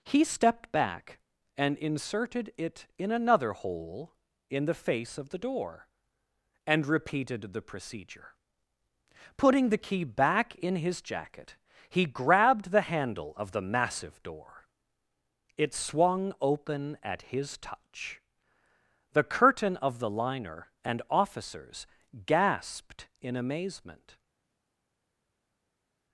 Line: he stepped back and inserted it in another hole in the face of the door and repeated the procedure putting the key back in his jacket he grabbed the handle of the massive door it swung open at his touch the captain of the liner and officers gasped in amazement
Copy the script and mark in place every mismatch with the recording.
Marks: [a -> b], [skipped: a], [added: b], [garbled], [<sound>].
he stepped back and inserted it in another hole in the face of the door and repeated the procedure putting the key back in his jacket he grabbed the handle of the massive door it swung open at his touch the [captain -> curtain] of the liner and officers gasped in amazement